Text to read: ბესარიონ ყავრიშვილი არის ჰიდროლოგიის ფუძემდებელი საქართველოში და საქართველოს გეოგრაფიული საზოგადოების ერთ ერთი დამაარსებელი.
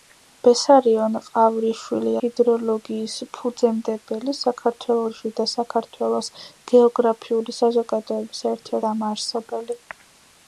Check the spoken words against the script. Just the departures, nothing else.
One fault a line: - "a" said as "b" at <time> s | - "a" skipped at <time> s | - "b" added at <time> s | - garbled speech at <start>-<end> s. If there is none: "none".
- "არის" skipped at 2.1 s
- "ერთი" skipped at 8.8 s